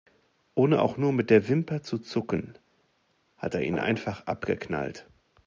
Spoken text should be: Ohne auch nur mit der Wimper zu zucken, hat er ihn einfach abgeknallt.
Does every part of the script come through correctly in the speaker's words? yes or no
yes